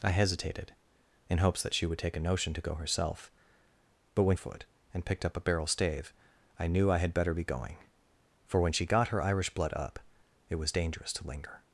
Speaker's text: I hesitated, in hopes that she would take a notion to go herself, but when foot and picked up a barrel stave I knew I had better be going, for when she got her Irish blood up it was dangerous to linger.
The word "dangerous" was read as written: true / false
true